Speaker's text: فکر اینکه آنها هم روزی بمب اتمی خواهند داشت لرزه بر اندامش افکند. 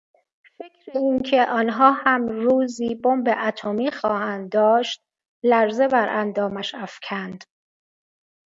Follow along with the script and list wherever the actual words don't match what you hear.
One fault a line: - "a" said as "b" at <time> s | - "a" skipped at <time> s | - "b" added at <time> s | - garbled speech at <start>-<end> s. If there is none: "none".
none